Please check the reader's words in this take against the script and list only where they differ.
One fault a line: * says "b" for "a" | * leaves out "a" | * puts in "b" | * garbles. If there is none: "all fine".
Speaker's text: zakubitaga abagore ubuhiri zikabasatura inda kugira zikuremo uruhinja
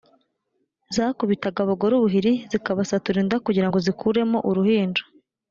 * puts in "ngo"